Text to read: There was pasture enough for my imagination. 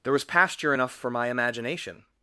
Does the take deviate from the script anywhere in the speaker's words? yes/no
no